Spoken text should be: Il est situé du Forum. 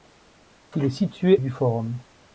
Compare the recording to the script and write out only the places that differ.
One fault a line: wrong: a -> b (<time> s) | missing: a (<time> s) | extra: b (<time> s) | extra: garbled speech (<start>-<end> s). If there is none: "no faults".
no faults